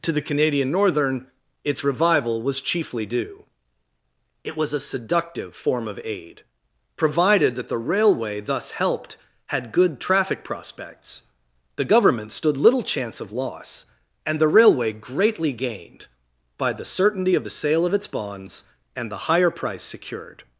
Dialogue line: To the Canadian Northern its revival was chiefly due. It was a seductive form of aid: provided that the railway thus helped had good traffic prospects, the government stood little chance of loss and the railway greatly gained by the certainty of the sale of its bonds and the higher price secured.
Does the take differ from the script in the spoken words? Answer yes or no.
no